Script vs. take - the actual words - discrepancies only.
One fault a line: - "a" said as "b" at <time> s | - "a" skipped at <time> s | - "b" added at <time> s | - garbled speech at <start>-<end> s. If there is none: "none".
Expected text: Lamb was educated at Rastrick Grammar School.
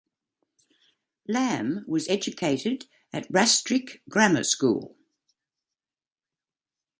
none